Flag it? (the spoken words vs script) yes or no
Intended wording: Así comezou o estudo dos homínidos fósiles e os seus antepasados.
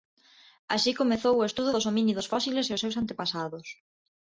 no